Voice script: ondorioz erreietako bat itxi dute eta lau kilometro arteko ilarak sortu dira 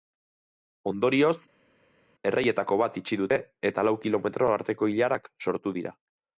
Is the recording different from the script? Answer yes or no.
no